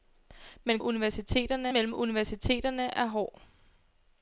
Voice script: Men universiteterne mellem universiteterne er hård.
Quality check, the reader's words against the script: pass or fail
pass